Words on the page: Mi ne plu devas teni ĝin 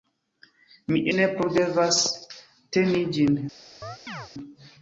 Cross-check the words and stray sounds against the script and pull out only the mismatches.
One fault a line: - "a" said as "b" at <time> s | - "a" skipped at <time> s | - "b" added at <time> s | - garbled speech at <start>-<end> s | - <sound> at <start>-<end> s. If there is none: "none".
- chirp at 3.8-4.3 s